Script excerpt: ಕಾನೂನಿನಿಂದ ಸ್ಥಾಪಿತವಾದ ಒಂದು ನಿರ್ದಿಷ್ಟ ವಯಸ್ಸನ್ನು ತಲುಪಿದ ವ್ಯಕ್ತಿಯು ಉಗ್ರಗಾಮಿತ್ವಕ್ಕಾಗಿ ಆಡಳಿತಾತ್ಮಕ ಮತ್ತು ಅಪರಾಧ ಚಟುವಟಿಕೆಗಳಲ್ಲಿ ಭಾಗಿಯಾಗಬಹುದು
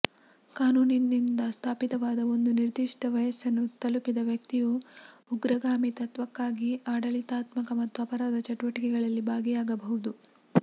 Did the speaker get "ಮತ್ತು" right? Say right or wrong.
right